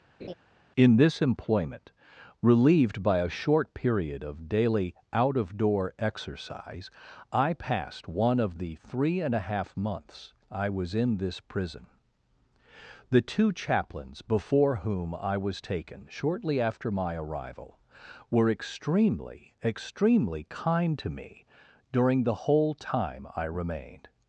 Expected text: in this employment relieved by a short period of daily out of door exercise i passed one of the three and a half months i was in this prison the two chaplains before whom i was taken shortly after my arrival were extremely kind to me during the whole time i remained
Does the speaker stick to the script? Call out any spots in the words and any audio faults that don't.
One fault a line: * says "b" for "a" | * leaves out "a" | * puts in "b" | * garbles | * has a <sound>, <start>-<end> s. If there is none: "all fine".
* has a laugh, 0.2-0.3 s
* puts in "extremely"